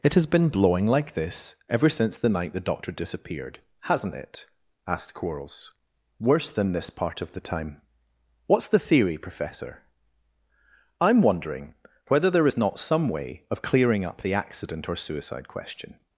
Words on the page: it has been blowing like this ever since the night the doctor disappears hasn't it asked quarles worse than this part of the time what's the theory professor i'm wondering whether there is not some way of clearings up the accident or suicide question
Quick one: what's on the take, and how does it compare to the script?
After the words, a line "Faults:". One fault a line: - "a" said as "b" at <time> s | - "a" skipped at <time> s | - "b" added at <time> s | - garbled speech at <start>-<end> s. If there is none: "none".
it has been blowing like this ever since the night the doctor disappeared hasn't it asked quarles worse than this part of the time what's the theory professor i'm wondering whether there is not some way of clearing up the accident or suicide question
Faults:
- "disappears" said as "disappeared" at 2.9 s
- "clearings" said as "clearing" at 13.6 s